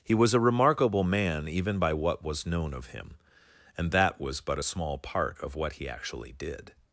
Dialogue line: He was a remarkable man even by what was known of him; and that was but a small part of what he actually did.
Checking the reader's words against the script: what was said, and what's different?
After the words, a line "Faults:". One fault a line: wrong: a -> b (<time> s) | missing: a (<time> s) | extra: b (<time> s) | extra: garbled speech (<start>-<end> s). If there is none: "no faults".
He was a remarkable man even by what was known of him; and that was but a small part of what he actually did.
Faults:
no faults